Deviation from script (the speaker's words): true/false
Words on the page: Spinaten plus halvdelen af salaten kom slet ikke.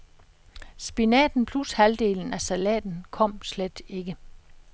false